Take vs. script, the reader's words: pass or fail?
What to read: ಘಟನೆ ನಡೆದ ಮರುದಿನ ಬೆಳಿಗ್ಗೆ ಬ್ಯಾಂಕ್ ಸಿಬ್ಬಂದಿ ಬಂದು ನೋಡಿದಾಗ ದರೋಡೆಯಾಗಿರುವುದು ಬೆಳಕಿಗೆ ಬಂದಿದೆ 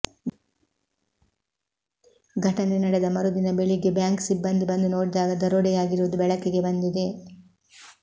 pass